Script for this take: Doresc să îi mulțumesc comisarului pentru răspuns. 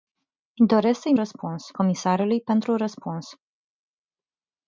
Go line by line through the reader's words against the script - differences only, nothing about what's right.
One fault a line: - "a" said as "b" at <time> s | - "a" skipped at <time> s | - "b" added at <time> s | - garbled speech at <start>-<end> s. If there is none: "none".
- "mulțumesc" said as "răspuns" at 1.1 s